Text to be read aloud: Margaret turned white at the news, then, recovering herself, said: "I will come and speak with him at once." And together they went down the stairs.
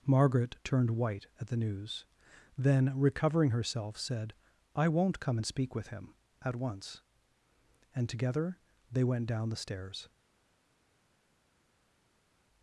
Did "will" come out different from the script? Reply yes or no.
yes